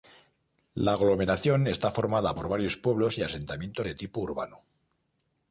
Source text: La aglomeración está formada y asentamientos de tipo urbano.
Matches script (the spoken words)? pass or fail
fail